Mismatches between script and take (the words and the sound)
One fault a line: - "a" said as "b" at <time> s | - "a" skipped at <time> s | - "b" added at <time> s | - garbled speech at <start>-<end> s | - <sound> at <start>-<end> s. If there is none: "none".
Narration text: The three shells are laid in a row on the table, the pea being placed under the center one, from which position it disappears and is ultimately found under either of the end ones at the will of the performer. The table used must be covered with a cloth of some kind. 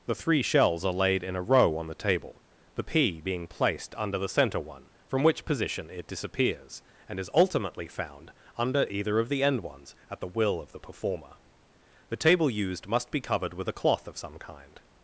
none